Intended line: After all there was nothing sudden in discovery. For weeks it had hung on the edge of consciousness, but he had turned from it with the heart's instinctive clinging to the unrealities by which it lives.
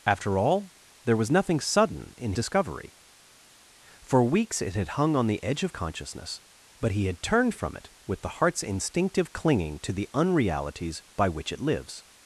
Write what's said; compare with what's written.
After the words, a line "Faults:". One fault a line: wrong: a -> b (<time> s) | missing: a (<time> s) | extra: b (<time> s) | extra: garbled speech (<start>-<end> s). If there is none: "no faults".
After all there was nothing sudden in discovery. For weeks it had hung on the edge of consciousness, but he had turned from it with the heart's instinctive clinging to the unrealities by which it lives.
Faults:
no faults